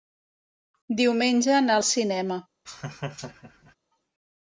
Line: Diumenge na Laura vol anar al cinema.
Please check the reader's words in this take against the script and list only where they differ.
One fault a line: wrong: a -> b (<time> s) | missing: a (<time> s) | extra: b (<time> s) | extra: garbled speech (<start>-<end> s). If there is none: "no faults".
missing: Laura vol anar (1.8 s)